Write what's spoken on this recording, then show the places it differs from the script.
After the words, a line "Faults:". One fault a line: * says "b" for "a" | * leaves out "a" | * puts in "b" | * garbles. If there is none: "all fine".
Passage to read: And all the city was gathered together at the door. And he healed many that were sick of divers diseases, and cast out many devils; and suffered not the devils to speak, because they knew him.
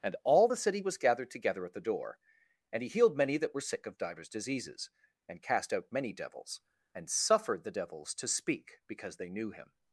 And all the city was gathered together at the door. And he healed many that were sick of divers diseases, and cast out many devils; and suffered the devils to speak, because they knew him.
Faults:
* leaves out "not"